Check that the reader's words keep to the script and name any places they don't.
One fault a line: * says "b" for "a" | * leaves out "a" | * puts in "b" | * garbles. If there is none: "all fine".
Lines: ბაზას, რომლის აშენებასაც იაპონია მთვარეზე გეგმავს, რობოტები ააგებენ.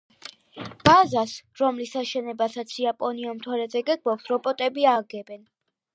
all fine